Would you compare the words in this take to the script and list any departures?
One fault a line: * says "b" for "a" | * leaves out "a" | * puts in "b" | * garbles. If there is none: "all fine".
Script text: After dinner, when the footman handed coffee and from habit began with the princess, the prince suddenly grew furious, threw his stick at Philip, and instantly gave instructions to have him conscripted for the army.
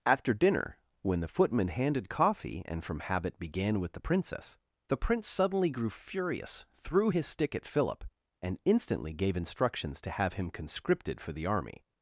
all fine